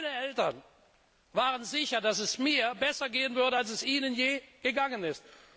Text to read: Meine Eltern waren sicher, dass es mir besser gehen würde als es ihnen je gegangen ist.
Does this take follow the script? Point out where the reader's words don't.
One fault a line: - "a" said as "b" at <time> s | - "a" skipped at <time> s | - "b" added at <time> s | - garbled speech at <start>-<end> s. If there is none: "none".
none